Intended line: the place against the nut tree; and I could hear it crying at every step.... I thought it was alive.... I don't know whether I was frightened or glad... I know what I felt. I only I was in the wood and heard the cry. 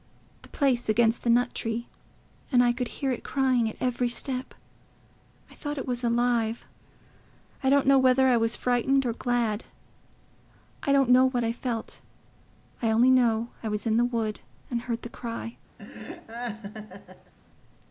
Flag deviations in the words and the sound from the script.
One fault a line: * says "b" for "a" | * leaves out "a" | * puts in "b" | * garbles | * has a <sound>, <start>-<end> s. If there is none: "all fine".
* puts in "don't"
* puts in "know"
* has a laugh, 15.8-17.3 s